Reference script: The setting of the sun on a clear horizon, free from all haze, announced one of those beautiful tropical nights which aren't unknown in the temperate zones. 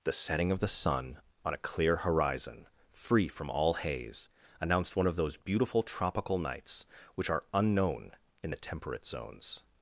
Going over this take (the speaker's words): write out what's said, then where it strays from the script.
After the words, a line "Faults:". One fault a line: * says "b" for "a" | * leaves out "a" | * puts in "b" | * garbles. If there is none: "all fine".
The setting of the sun on a clear horizon, free from all haze, announced one of those beautiful tropical nights which are unknown in the temperate zones.
Faults:
* says "are" for "aren't"